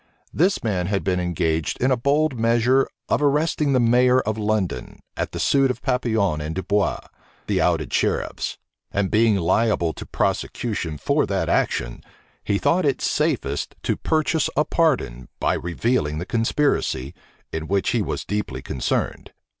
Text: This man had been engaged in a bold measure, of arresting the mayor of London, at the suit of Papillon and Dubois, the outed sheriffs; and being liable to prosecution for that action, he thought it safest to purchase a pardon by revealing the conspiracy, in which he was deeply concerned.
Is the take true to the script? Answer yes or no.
yes